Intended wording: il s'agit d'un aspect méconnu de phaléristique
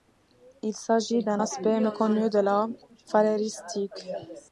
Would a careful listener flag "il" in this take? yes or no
no